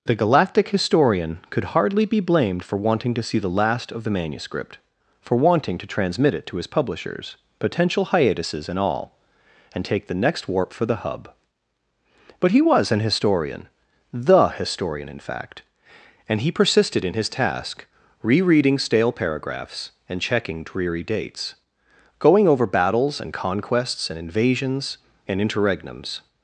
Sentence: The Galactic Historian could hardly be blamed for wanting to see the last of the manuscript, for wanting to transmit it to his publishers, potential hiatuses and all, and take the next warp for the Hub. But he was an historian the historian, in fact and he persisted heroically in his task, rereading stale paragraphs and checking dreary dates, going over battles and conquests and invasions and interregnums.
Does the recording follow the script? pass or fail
fail